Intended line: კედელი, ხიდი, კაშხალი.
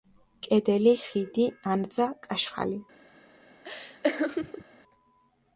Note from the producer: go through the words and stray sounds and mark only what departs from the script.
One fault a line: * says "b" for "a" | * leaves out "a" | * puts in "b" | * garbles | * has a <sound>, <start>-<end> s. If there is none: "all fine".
* puts in "ანძა"
* has a laugh, 3.6-4.6 s